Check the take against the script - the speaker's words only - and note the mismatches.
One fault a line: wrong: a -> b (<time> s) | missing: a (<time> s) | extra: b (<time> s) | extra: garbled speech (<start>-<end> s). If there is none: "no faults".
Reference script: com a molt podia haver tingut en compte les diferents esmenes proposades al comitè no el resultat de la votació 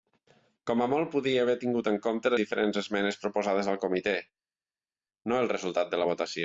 missing: les (2.3 s)